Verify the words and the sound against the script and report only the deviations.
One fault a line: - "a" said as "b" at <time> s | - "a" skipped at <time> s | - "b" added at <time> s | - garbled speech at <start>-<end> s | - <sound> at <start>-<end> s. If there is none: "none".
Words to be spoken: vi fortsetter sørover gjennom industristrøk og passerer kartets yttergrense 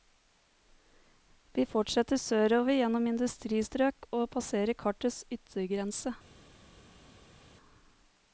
none